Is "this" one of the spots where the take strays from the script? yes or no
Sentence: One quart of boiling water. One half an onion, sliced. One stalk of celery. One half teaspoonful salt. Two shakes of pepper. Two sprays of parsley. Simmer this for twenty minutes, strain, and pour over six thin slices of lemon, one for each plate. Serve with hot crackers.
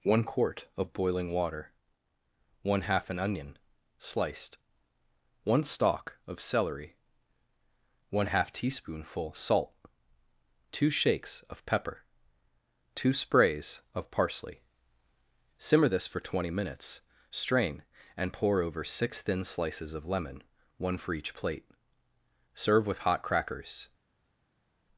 no